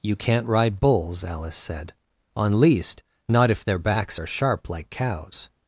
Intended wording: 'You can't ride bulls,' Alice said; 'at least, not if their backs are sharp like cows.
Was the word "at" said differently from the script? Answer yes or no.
yes